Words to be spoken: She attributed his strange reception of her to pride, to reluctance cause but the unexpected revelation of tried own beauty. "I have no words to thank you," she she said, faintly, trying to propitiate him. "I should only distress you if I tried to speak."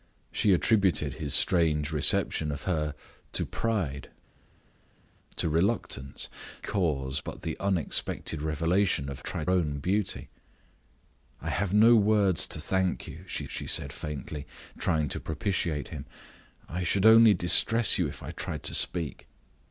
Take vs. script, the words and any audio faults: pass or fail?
pass